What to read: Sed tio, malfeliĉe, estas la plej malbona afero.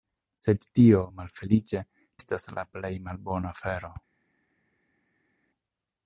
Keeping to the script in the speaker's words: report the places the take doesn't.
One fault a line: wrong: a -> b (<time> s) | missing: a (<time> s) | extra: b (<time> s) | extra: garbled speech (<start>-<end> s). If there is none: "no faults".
no faults